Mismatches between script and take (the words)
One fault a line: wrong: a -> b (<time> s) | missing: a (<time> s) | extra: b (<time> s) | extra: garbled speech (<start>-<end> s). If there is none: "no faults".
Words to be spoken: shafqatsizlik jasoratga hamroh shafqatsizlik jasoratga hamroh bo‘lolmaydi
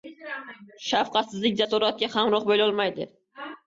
missing: shafqatsizlik jasoratga hamroh (2.5 s)